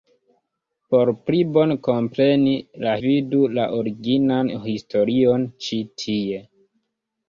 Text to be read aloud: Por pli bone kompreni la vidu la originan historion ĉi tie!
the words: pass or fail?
pass